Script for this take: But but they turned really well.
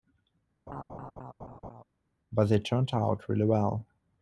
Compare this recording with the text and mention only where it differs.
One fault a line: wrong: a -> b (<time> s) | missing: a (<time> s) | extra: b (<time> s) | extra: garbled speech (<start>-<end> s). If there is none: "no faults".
missing: but (2.5 s)
extra: out (2.9 s)